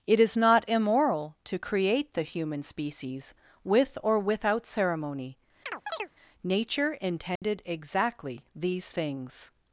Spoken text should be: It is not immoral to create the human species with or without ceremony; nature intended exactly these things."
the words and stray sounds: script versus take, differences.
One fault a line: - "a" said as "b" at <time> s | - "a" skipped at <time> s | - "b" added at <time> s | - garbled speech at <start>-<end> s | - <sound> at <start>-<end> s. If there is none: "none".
- chirp at 5.7-6.1 s
- dropout at 7.4-7.4 s